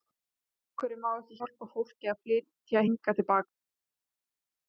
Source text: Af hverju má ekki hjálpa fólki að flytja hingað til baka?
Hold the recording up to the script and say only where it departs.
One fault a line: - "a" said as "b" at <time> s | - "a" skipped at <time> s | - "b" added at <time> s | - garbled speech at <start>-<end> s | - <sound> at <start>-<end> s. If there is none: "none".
none